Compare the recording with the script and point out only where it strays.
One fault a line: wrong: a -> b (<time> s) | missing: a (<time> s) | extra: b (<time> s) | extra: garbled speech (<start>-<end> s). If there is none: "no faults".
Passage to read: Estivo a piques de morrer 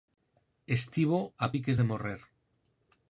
no faults